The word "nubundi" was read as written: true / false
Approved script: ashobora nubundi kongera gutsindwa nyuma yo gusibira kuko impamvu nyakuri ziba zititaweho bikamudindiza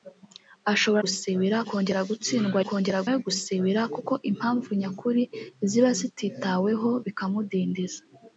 false